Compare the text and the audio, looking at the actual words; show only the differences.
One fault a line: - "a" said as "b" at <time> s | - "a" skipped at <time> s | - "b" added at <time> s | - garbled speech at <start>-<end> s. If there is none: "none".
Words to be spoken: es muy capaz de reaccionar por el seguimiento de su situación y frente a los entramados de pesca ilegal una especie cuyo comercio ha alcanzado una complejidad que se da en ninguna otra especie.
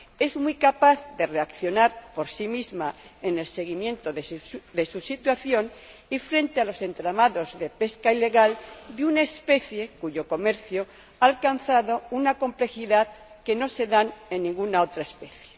- "sí misma en" added at 2.3 s
- "de" added at 8.9 s
- "no" added at 13.6 s